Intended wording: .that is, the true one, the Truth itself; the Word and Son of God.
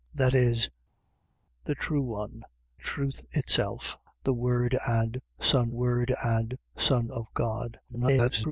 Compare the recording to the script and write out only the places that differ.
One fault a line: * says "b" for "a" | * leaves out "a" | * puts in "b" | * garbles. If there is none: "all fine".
* leaves out "the"
* puts in "Word and Son"
* garbles